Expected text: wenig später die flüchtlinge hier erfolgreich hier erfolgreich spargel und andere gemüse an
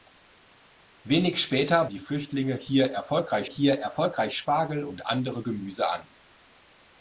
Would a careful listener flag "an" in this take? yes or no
no